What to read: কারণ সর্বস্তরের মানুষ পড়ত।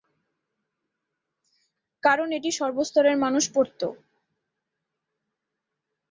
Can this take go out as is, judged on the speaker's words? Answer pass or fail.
fail